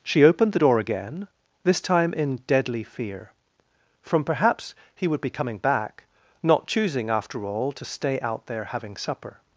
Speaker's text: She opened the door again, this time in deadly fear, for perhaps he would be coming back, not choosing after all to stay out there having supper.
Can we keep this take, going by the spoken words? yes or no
no